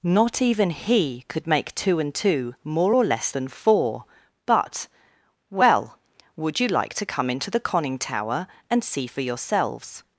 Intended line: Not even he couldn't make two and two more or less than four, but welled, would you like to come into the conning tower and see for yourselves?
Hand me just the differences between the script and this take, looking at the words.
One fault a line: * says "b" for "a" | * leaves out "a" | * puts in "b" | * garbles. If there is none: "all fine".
* says "could" for "couldn't"
* says "well" for "welled"